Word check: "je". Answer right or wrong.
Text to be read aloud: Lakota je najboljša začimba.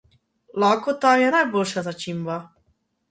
right